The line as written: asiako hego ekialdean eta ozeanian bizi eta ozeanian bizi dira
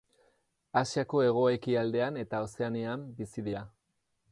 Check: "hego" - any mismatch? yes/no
no